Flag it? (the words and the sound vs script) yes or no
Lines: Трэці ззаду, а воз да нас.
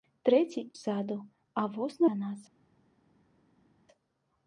no